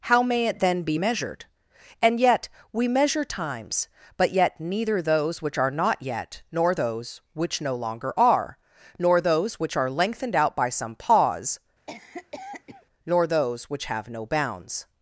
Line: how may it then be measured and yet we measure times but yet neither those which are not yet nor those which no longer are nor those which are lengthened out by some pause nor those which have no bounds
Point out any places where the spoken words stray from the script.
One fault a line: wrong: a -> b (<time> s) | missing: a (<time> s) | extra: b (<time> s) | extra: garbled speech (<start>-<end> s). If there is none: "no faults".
no faults